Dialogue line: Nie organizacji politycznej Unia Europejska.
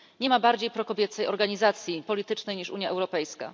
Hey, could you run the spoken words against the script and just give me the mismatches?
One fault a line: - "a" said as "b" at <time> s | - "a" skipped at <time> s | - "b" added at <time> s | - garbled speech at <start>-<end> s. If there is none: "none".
- "ma bardziej prokobiecej" added at 0.3 s
- "niż" added at 2.6 s